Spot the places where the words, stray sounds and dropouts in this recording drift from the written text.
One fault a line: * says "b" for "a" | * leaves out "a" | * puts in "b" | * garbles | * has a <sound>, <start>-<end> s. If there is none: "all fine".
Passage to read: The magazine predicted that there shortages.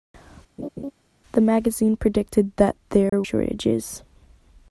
* has a laugh, 0.6-0.9 s
* has a dropout, 3.1-3.1 s